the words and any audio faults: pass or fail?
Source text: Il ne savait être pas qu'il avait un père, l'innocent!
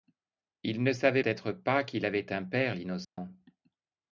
fail